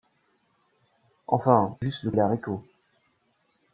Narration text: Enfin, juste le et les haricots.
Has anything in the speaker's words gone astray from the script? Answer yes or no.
no